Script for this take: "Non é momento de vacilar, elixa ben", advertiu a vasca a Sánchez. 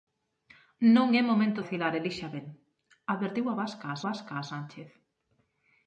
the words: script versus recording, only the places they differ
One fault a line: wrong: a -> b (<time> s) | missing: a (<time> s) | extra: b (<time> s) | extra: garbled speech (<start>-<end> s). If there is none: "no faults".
missing: de (1.6 s)
extra: vasca a (4.1 s)